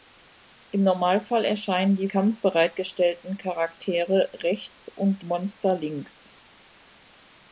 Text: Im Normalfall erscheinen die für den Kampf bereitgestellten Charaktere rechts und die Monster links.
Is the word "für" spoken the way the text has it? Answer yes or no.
no